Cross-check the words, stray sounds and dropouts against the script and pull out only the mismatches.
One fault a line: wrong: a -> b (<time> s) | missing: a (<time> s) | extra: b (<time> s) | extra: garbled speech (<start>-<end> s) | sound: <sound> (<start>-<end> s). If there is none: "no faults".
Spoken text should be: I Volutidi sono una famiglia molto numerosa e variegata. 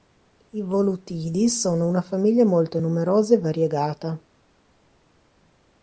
no faults